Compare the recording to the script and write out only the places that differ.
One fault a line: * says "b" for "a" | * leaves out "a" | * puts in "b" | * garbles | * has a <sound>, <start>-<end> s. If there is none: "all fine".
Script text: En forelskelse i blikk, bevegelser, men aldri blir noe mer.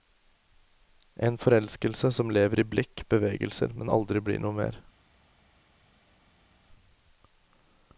* puts in "som lever"